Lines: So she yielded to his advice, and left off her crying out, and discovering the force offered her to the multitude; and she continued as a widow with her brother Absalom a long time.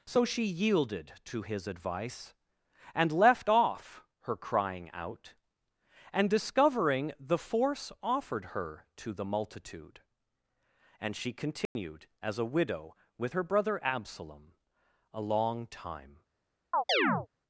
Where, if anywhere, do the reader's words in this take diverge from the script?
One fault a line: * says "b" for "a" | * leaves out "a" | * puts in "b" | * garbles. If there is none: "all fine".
all fine